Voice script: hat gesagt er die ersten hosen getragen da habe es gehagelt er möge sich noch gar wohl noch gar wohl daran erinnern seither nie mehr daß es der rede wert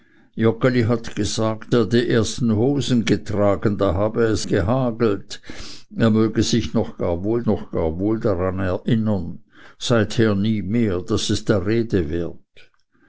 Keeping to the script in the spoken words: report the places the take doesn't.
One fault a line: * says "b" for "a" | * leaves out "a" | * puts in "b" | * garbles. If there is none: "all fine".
all fine